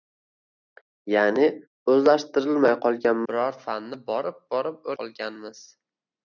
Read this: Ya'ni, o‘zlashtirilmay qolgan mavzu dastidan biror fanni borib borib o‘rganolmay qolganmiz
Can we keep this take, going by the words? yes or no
no